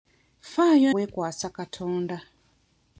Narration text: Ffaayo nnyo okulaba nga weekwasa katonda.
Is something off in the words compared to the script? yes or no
yes